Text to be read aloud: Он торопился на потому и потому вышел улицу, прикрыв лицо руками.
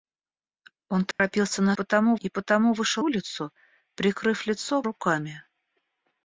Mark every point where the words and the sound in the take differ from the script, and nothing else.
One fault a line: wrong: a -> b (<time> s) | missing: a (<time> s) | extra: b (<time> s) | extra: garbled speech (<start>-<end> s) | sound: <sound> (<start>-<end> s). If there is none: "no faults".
sound: dropout (1.1-1.2 s)